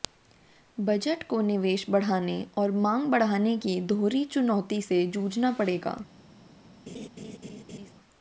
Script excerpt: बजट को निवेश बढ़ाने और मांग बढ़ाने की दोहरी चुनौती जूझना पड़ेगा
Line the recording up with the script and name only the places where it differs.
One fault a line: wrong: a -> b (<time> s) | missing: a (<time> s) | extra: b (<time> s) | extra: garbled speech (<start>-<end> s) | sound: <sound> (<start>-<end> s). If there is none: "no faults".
extra: से (4.8 s)
sound: laugh (6.9-7.9 s)